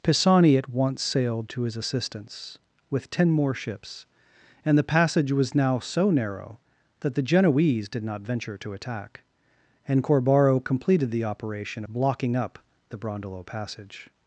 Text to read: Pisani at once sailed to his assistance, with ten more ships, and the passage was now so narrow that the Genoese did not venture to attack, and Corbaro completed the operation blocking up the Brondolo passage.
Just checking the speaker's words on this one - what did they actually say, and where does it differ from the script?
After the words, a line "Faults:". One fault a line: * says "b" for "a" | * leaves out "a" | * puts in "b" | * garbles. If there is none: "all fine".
Pisani at once sailed to his assistance, with ten more ships, and the passage was now so narrow that the Genoese did not venture to attack, and Corbaro completed the operation blocking up the Brondolo passage.
Faults:
all fine